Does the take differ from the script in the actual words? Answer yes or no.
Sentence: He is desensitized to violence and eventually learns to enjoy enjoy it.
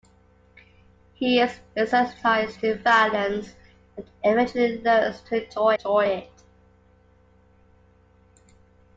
no